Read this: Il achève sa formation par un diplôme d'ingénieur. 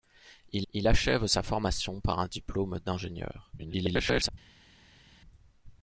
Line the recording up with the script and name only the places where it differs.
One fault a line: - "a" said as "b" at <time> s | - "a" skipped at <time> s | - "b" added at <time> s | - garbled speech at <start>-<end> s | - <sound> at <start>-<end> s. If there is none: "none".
- "il" added at 0.7 s
- garbled speech at 3.6-4.3 s